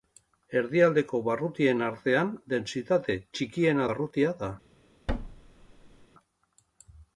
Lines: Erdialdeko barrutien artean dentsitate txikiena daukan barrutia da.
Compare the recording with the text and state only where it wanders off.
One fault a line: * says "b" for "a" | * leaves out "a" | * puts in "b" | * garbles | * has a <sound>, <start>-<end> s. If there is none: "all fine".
* leaves out "daukan"
* has a thud, 5.1-6.1 s